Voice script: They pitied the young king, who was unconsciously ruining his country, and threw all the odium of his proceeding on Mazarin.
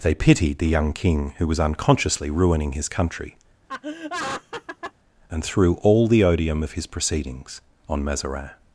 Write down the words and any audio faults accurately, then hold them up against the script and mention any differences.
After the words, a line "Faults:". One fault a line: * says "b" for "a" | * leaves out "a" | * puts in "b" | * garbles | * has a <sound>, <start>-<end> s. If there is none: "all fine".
They pitied the young king, who was unconsciously ruining his country, and threw all the odium of his proceedings on Mazarin.
Faults:
* has a laugh, 3.7-4.9 s
* says "proceedings" for "proceeding"